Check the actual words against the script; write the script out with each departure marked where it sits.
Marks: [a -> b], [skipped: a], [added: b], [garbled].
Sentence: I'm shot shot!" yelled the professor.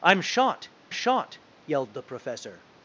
I'm shot shot!" yelled the professor.